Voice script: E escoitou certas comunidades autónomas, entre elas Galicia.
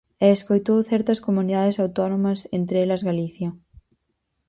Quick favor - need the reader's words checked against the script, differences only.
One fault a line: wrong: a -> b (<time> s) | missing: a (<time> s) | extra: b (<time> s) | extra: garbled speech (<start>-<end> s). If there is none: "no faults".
no faults